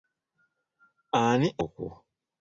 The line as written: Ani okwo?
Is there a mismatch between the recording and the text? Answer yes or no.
no